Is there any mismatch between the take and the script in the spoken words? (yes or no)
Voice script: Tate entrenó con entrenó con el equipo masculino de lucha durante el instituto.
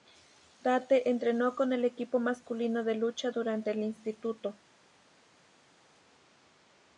yes